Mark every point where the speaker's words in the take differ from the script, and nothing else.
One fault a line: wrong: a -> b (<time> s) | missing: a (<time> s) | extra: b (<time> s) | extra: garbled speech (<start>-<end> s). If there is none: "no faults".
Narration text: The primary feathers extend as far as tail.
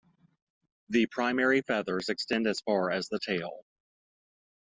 extra: the (3.1 s)